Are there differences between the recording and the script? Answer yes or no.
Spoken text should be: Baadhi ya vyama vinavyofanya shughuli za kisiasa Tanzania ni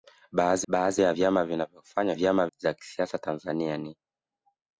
yes